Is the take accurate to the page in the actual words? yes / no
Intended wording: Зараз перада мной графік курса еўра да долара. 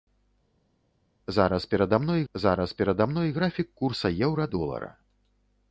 no